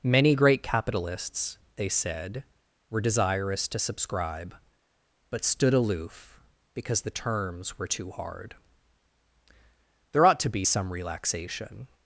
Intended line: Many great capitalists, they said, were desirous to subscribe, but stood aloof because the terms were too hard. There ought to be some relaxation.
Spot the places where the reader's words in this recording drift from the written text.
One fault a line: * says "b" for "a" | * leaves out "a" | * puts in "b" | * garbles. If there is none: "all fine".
all fine